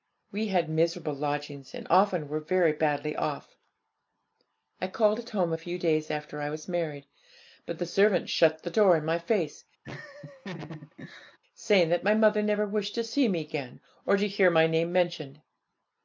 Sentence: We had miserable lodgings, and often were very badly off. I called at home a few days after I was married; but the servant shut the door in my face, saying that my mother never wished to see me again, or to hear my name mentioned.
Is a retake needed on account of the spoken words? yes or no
no